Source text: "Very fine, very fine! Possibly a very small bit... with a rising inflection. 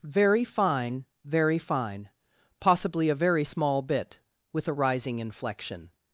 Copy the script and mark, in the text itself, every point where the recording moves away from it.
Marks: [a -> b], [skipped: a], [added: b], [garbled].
"Very fine, very fine! Possibly a very small bit... with a rising inflection.